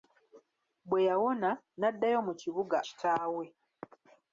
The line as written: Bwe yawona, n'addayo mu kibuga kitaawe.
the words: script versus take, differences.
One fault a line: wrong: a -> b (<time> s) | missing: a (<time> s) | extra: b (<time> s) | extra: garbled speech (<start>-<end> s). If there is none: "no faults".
no faults